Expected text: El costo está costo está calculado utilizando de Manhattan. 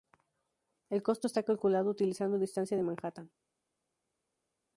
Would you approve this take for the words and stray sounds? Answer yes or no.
no